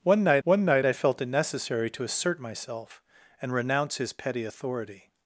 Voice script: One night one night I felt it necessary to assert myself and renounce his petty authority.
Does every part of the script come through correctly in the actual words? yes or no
yes